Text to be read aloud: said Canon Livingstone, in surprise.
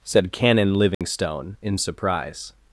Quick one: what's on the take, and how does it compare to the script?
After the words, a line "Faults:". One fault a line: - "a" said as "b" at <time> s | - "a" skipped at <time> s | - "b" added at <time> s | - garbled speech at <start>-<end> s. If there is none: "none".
said Canon Livingstone, in surprise.
Faults:
none